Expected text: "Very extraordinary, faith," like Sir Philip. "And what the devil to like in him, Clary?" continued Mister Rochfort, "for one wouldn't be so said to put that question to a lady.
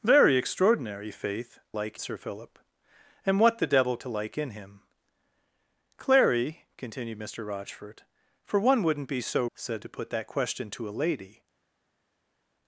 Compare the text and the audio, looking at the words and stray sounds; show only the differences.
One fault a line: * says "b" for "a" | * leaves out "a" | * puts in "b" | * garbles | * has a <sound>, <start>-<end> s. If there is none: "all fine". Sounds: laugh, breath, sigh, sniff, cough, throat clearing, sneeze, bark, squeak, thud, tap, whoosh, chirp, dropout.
all fine